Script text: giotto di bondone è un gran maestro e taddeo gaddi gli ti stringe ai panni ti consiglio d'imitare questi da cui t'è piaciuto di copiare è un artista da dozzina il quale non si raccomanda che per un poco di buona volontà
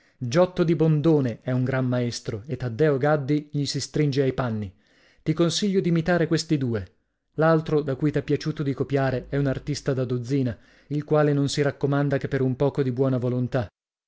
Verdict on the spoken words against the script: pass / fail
fail